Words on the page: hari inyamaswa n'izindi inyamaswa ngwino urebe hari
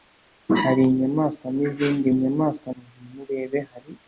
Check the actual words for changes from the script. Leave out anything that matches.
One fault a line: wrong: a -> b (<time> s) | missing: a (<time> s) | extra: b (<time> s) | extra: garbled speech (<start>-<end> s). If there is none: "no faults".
no faults